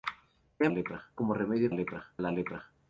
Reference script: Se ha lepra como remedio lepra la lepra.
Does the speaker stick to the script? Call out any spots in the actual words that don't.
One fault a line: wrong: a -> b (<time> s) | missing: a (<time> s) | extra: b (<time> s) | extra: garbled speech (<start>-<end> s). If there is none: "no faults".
no faults